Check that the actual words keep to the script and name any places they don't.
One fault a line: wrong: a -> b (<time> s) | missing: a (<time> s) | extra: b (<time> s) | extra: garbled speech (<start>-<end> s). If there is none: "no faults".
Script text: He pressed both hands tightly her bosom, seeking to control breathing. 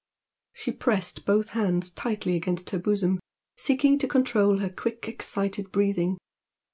wrong: He -> She (0.5 s)
extra: against (2.4 s)
extra: her quick excited (4.6 s)